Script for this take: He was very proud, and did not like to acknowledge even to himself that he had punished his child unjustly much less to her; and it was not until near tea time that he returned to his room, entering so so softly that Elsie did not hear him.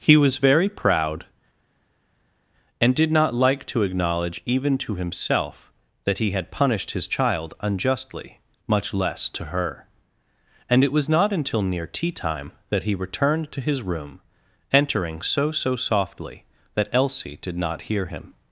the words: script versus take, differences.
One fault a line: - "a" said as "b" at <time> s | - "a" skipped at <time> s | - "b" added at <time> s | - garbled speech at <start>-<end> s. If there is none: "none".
none